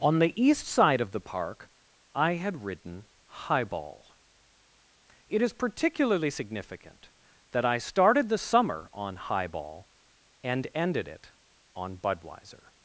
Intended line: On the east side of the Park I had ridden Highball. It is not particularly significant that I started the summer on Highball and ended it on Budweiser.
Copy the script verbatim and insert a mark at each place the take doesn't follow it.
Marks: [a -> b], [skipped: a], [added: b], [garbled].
On the east side of the Park I had ridden Highball. It is [skipped: not] particularly significant that I started the summer on Highball and ended it on Budweiser.